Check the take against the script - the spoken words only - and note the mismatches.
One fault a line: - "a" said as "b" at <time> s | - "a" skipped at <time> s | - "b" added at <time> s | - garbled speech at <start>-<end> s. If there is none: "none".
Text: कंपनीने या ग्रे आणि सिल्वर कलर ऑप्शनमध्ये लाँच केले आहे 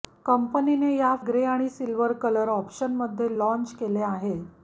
none